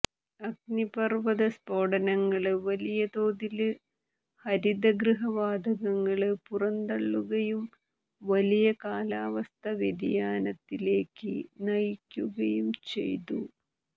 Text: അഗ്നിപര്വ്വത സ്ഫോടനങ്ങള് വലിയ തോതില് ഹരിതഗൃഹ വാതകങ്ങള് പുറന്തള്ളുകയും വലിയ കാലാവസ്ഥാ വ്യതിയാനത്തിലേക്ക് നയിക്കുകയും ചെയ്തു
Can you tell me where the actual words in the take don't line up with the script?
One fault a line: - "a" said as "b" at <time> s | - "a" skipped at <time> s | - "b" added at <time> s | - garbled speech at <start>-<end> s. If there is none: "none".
none